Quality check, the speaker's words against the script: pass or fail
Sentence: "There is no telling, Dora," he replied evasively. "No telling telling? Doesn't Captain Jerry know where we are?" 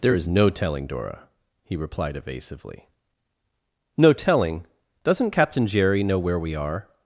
fail